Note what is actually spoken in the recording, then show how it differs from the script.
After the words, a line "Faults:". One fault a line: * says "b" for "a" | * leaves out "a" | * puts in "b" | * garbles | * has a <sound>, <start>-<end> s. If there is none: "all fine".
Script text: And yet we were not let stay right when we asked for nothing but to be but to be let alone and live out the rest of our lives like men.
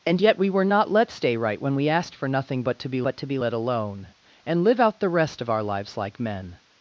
And yet we were not let stay right when we asked for nothing but to be but to be let alone and live out the rest of our lives like men.
Faults:
all fine